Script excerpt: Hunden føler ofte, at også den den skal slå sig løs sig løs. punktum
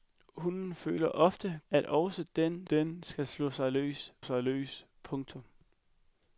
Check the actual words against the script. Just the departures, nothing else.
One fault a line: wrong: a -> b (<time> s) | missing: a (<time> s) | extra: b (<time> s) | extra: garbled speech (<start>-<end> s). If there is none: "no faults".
no faults